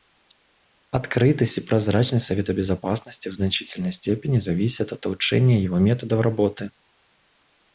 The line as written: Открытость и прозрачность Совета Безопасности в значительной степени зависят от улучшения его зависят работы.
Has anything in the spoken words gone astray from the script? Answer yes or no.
yes